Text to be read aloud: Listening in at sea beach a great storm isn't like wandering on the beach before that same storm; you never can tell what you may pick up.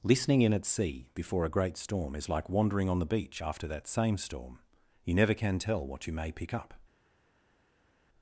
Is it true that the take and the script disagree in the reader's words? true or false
true